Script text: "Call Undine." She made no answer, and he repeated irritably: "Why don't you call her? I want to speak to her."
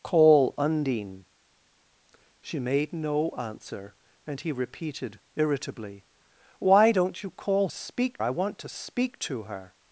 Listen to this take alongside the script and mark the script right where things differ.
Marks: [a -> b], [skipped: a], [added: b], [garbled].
"Call Undine." She made no answer, and he repeated irritably: "Why don't you call [her? -> speak] I want to speak to her."